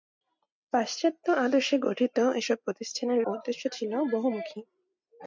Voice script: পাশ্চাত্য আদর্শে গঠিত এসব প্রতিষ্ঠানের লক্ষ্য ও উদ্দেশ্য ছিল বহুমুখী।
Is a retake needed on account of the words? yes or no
yes